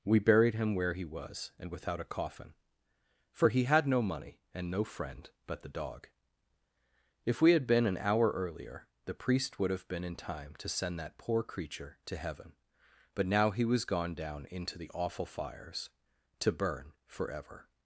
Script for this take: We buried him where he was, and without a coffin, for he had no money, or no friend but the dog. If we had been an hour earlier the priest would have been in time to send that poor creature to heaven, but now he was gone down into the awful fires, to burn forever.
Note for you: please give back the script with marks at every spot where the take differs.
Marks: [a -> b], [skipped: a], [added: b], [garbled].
We buried him where he was, and without a coffin, for he had no money, [or -> and] no friend but the dog. If we had been an hour earlier the priest would have been in time to send that poor creature to heaven, but now he was gone down into the awful fires, to burn forever.